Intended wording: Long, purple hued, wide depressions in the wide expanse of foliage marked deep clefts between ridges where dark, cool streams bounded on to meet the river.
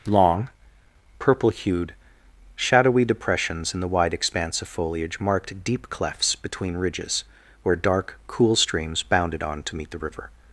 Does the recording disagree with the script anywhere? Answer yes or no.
yes